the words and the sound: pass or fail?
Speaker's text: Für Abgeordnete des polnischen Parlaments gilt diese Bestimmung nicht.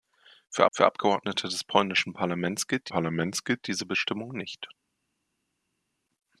fail